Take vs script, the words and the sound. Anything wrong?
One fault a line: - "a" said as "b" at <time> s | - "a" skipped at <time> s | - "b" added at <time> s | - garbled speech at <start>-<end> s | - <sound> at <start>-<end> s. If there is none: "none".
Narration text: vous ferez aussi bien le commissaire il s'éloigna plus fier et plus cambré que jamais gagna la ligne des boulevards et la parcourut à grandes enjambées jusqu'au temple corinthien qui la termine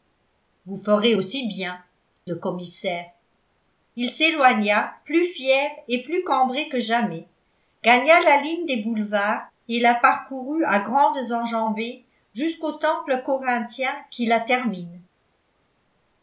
none